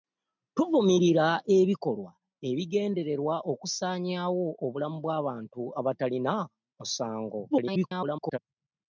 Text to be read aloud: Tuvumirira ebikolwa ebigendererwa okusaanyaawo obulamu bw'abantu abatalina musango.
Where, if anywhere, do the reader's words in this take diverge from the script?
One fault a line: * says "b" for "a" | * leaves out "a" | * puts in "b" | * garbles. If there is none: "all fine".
* garbles